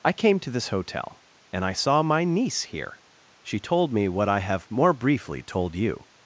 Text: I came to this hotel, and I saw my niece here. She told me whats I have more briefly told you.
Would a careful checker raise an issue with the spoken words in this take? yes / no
yes